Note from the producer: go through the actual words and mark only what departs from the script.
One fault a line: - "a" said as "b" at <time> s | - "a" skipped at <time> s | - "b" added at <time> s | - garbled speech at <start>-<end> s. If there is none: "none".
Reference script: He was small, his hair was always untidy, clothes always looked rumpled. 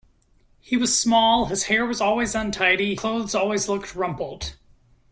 none